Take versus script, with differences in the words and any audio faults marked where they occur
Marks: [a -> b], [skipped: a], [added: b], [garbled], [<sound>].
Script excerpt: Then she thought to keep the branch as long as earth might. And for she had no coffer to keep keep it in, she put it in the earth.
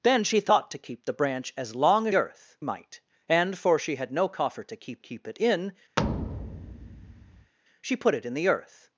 Then she thought to keep the branch as long as earth might. And for she had no coffer to keep keep it in, [thud] she put it in the earth.